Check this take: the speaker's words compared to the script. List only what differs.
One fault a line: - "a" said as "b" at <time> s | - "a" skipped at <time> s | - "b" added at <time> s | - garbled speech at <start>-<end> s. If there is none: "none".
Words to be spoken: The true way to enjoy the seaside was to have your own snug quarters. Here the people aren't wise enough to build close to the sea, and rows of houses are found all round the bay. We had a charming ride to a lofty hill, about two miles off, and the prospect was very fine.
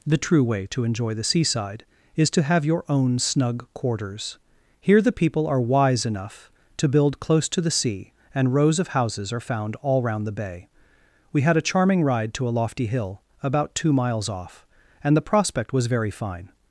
- "was" said as "is" at 2.1 s
- "aren't" said as "are" at 5.5 s